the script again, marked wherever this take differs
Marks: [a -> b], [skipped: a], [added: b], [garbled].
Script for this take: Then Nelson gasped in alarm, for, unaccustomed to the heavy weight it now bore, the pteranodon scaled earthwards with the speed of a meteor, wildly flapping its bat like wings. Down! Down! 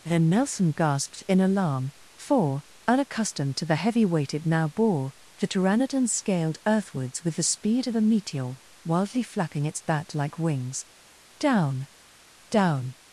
Then Nelson gasped in alarm, for, unaccustomed to the heavy weight it now bore, the pteranodon scaled earthwards with the speed of a meteor, wildly flapping its bat like wings. Down! Down!